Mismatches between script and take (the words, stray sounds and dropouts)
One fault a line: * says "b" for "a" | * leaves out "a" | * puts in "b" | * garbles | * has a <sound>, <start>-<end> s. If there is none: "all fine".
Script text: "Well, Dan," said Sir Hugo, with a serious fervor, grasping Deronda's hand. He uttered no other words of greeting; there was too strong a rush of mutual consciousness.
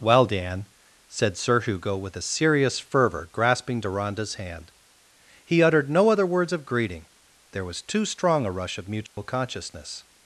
* has a dropout, 9.1-9.2 s